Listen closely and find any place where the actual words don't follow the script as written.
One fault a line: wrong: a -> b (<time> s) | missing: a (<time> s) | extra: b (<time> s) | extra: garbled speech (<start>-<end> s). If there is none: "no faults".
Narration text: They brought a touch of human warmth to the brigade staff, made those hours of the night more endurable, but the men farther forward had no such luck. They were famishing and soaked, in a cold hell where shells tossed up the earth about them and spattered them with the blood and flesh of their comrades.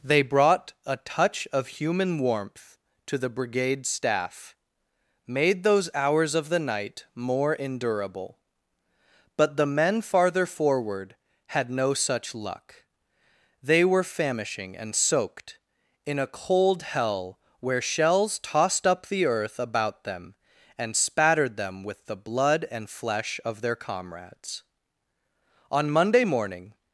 extra: On Monday morning (25.7 s)